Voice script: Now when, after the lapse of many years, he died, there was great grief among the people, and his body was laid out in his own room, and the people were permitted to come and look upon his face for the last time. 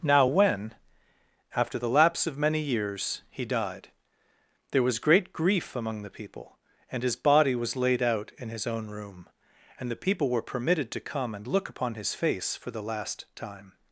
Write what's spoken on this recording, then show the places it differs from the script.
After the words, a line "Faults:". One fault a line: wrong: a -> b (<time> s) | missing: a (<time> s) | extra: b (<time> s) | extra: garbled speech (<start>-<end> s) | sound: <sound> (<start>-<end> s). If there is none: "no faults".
Now when, after the lapse of many years, he died, there was great grief among the people, and his body was laid out in his own room, and the people were permitted to come and look upon his face for the last time.
Faults:
no faults